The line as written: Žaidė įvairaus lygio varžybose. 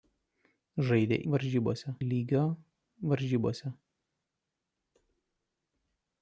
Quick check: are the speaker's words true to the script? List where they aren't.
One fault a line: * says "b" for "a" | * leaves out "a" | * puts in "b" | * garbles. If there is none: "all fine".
* says "varžybose" for "įvairaus"